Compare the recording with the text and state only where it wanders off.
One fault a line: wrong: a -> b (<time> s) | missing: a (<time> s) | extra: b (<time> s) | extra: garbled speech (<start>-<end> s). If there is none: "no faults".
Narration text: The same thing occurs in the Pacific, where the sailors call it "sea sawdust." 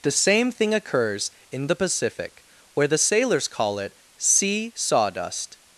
no faults